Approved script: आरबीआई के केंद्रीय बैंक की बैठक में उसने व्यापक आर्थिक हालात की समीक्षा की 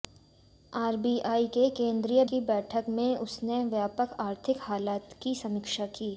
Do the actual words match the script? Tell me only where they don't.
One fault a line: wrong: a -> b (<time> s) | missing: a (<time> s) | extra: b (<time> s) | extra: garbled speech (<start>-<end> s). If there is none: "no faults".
missing: बैंक (2.2 s)